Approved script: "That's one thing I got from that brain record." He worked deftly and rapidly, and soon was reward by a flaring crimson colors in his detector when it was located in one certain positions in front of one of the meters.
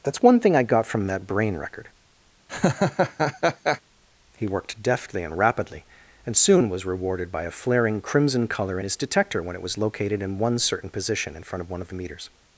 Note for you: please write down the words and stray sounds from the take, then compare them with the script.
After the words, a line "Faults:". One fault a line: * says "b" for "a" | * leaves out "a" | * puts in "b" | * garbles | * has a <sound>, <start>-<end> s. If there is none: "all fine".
"That's one thing I got from that brain record." He worked deftly and rapidly, and soon was rewarded by a flaring crimson color in his detector when it was located in one certain position in front of one of the meters.
Faults:
* has a laugh, 2.5-3.8 s
* says "rewarded" for "reward"
* says "color" for "colors"
* says "position" for "positions"